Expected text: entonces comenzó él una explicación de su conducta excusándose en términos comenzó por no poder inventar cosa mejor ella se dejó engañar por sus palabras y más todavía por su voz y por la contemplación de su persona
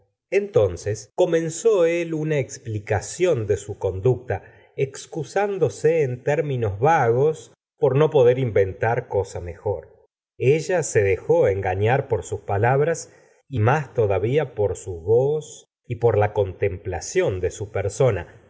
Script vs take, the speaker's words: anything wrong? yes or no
yes